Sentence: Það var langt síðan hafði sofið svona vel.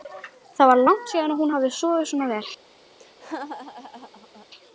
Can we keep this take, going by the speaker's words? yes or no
no